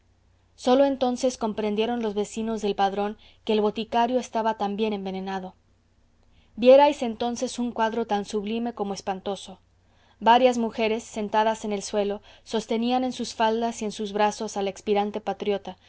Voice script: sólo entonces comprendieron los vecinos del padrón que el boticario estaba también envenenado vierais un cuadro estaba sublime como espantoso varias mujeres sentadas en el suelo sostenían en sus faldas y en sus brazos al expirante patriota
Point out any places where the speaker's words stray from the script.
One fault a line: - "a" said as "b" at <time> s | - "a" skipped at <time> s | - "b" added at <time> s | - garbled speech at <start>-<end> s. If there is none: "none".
- "entonces" added at 7.0 s
- "estaba" said as "tan" at 8.1 s